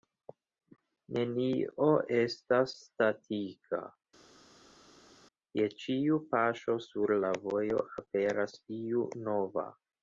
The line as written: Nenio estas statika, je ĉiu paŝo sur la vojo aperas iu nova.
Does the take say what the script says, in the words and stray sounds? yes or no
yes